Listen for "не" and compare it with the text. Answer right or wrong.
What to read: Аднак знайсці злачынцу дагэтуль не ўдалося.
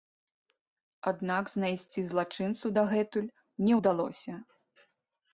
right